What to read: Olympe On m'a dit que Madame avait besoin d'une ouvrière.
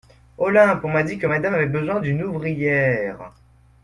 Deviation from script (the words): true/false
false